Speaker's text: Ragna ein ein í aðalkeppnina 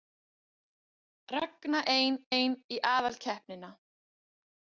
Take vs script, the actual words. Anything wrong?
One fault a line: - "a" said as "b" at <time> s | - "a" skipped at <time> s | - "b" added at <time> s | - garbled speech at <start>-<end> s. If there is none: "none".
none